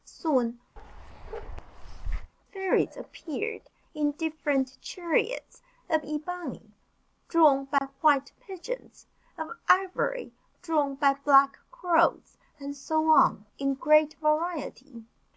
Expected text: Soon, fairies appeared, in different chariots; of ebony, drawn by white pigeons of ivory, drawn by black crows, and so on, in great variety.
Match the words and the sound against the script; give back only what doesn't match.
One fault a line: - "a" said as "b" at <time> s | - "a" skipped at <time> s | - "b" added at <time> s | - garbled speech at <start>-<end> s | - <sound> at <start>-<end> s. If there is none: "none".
- bark at 0.8-2.3 s
- dropout at 7.8-7.8 s